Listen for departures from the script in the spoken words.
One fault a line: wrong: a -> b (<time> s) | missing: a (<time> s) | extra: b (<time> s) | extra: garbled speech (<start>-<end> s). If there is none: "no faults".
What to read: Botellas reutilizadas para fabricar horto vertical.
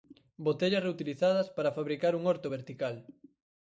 extra: un (2.1 s)